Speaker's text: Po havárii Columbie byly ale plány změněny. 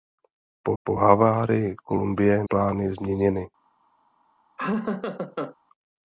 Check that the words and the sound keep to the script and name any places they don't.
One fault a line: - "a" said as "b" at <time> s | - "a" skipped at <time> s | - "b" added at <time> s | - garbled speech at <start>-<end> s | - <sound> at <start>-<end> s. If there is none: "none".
- "po" added at 0.8 s
- "byly ale" skipped at 2.4 s
- laugh at 4.6-5.6 s